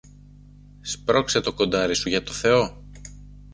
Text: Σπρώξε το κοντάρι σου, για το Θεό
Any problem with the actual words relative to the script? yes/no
no